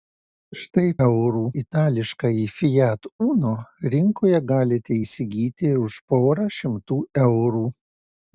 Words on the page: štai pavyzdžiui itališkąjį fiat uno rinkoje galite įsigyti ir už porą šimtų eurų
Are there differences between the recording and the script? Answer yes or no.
yes